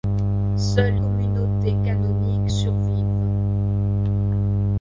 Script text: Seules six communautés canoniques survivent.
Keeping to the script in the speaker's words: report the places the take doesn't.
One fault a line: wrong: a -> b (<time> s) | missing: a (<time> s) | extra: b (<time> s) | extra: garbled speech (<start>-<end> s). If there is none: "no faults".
missing: six (1.0 s)